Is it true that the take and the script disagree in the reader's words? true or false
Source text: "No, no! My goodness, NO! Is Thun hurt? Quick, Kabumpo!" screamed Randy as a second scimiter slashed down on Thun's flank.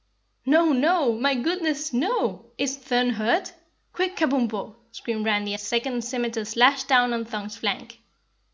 false